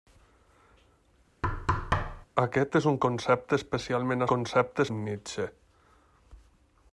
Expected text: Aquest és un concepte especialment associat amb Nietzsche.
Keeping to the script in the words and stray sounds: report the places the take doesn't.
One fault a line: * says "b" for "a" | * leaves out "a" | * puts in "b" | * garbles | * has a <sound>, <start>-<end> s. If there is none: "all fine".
* has a thud, 1.4-2.3 s
* says "concepte" for "associat"